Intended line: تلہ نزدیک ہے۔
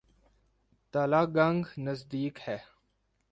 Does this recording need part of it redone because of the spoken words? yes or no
yes